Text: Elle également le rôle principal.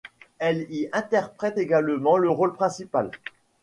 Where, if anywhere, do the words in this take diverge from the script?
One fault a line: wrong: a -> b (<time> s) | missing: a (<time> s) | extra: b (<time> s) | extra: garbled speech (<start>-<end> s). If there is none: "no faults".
extra: y interprète (0.7 s)